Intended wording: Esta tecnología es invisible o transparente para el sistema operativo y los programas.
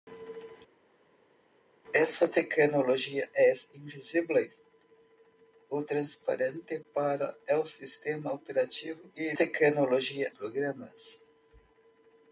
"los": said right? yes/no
no